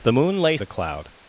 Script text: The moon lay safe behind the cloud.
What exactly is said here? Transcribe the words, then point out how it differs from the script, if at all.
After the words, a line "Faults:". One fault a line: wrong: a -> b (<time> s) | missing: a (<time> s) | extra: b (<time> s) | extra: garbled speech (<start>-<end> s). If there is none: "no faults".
The moon lay the cloud.
Faults:
missing: safe behind (0.6 s)